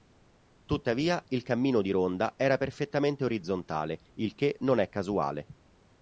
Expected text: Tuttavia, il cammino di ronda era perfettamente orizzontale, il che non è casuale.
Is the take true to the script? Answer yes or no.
yes